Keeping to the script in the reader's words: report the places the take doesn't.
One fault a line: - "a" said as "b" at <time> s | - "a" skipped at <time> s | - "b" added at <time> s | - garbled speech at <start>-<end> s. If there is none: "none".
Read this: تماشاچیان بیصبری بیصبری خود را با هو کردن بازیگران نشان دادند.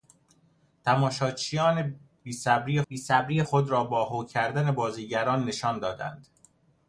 none